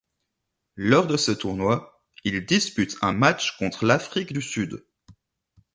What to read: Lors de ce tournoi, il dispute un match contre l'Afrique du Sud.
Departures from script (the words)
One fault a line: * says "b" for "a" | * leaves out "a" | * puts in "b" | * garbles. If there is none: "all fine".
all fine